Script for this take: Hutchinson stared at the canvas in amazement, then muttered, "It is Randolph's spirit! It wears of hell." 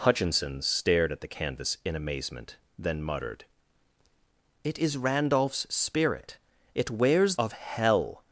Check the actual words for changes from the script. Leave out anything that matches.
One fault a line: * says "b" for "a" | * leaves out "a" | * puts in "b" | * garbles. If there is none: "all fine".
all fine